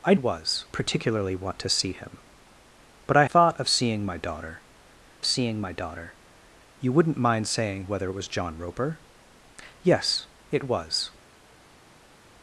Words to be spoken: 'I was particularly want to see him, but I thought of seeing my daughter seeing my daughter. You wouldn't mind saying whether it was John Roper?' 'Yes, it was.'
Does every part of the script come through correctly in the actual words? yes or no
yes